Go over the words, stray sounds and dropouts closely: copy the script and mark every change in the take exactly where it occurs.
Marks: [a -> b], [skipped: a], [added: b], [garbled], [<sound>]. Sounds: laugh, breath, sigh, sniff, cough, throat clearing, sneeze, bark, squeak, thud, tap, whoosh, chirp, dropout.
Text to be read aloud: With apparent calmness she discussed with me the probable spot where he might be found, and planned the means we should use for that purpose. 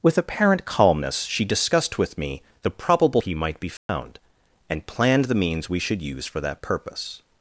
With apparent calmness she discussed with me the probable [skipped: spot where] he might be found, [dropout] and planned the means we should use for that purpose.